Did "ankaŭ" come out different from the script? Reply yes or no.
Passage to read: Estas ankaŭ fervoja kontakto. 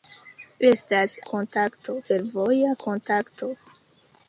yes